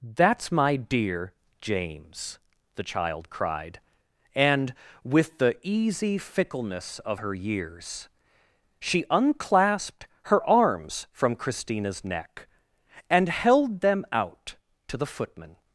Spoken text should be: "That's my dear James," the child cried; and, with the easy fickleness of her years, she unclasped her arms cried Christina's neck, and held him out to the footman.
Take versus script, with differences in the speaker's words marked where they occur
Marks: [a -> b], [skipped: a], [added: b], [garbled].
"That's my dear James," the child cried; and, with the easy fickleness of her years, she unclasped her arms [cried -> from] Christina's neck, and held [him -> them] out to the footman.